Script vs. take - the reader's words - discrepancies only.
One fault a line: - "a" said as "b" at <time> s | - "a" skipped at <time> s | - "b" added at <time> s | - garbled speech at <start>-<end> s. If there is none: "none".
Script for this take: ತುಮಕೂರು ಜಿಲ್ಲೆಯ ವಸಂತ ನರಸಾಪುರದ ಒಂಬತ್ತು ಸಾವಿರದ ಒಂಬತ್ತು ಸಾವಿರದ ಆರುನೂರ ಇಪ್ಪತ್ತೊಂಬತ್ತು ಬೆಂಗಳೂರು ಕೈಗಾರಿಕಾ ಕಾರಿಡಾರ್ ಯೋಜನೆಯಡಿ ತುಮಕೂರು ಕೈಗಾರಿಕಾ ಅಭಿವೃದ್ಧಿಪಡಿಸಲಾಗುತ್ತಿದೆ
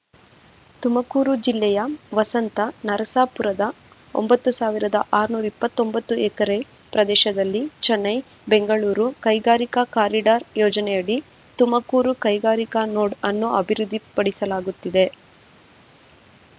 - "ಒಂಬತ್ತು ಸಾವಿರದ ಆರುನೂರ ಇಪ್ಪತ್ತೊಂಬತ್ತು" said as "ಆರುನೂರ ಇಪ್ಪತ್ತೊಂಬತ್ತು ಎಕರೆ ಪ್ರದೇಶದಲ್ಲಿ ಚೆನ್ನೈ" at 5.1 s
- "ನೋಡ್ ಅನ್ನು" added at 12.9 s